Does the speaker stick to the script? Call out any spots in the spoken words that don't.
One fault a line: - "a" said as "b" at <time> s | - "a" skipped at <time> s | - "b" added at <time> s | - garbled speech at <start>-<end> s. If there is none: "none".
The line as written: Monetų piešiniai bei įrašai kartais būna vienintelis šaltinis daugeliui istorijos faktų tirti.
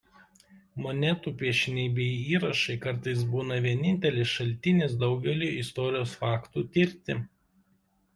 none